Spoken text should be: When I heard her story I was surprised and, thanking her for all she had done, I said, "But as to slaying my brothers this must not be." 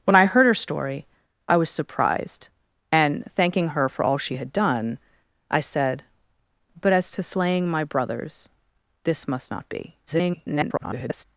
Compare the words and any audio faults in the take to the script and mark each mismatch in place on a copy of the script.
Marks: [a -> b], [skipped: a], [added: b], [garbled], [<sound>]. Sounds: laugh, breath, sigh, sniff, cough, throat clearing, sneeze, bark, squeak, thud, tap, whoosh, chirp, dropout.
When I heard her story I was surprised and, thanking her for all she had done, I said, "But as to slaying my brothers this must not be." [garbled]